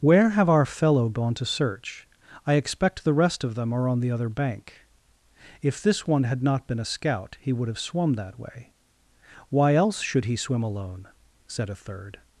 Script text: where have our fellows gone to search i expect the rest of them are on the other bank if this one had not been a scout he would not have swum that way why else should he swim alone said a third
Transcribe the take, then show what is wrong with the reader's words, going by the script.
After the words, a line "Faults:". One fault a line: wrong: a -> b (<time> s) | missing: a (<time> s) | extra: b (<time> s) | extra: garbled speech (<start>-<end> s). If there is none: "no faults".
where have our fellow gone to search i expect the rest of them are on the other bank if this one had not been a scout he would have swum that way why else should he swim alone said a third
Faults:
wrong: fellows -> fellow (0.7 s)
missing: not (7.7 s)